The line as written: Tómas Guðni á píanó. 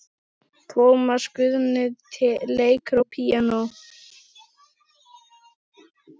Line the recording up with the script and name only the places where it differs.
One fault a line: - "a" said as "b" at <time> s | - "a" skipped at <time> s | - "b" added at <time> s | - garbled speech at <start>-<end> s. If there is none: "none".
- "leikur" added at 2.6 s